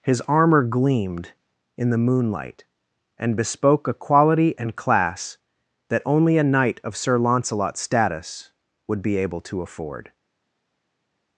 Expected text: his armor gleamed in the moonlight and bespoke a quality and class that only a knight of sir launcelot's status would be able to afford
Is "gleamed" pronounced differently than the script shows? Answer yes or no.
no